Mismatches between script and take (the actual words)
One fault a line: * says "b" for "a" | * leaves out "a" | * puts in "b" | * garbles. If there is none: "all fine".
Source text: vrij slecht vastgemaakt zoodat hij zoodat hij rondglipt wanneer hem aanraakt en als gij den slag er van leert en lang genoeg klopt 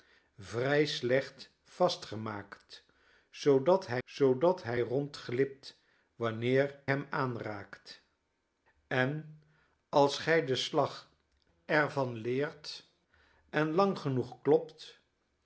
all fine